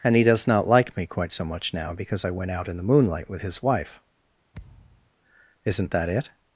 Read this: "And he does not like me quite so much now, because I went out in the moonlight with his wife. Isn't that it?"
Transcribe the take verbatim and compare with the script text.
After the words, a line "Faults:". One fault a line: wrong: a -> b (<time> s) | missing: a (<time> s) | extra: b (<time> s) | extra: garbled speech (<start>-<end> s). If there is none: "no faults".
"And he does not like me quite so much now, because I went out in the moonlight with his wife. Isn't that it?"
Faults:
no faults